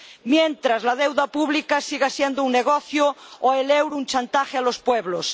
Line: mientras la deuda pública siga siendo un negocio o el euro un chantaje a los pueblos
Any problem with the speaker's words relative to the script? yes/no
no